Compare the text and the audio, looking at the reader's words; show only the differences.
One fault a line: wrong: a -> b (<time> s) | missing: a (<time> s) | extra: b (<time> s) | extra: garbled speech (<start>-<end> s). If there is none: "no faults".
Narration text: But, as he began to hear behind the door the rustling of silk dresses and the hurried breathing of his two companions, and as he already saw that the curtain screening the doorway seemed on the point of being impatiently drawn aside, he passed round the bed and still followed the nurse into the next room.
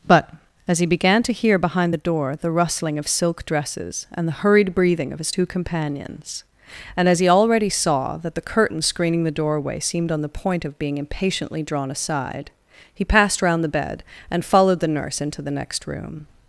missing: still (14.4 s)